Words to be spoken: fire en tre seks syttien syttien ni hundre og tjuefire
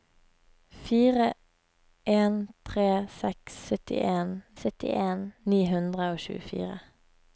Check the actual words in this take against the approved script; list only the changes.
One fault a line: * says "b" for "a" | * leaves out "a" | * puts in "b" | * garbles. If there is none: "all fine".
all fine